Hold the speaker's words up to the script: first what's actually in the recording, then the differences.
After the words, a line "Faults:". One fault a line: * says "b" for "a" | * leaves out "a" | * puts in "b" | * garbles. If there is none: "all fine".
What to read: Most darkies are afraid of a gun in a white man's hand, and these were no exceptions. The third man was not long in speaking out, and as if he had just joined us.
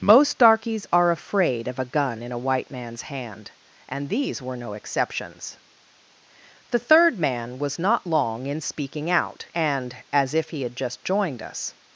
Most darkies are afraid of a gun in a white man's hand, and these were no exceptions. The third man was not long in speaking out, and as if he had just joined us.
Faults:
all fine